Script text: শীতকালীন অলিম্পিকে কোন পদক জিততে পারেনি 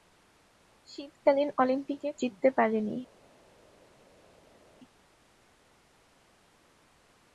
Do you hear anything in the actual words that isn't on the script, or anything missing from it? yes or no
yes